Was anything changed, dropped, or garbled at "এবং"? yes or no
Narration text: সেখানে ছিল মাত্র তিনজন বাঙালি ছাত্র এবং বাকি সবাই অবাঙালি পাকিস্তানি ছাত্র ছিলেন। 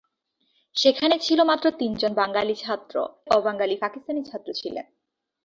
yes